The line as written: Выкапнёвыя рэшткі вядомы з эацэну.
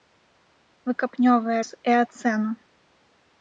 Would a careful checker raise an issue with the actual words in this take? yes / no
yes